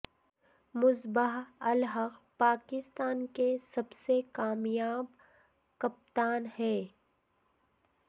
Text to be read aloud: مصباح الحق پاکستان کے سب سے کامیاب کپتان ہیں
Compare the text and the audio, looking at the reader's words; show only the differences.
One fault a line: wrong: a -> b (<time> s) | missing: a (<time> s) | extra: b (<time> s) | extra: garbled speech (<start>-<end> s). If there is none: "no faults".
no faults